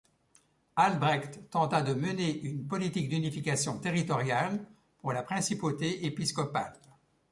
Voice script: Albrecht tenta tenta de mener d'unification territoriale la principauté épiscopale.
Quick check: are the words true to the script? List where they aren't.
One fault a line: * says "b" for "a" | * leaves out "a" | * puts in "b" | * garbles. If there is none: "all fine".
* leaves out "tenta"
* puts in "une politique"
* puts in "pour"